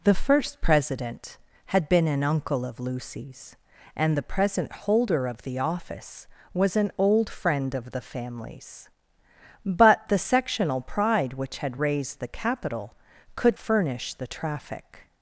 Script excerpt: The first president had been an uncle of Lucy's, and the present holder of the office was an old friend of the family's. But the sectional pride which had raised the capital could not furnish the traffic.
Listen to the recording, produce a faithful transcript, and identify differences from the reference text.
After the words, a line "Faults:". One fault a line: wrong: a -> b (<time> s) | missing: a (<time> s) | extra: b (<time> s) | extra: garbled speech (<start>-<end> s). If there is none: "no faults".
The first president had been an uncle of Lucy's, and the present holder of the office was an old friend of the family's. But the sectional pride which had raised the capital could furnish the traffic.
Faults:
missing: not (13.6 s)